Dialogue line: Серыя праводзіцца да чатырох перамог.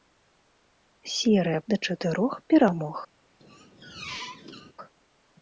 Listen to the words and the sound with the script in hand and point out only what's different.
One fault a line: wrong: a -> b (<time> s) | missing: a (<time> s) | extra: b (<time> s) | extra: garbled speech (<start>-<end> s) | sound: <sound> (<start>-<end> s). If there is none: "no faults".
missing: праводзіцца (1.6 s)
sound: squeak (3.4-4.7 s)